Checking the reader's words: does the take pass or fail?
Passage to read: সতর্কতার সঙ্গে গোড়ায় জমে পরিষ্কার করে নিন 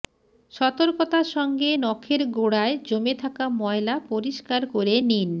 fail